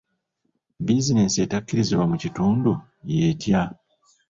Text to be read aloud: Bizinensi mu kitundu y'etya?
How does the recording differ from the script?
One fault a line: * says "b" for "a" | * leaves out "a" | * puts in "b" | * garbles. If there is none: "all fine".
* puts in "etakkirizibwa"